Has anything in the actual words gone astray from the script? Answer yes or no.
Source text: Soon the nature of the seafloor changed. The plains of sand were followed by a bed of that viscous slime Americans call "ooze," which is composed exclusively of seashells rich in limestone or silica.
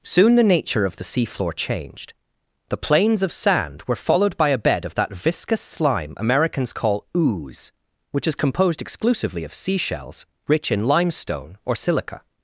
no